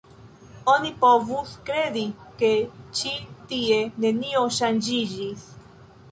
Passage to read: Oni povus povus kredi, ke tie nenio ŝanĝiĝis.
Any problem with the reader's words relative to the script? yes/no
yes